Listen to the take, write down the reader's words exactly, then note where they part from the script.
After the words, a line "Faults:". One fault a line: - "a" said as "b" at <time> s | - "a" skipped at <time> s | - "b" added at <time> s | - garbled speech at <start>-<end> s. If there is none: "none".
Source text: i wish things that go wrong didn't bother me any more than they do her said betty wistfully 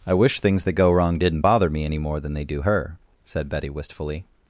i wish things that go wrong didn't bother me any more than they do her said betty wistfully
Faults:
none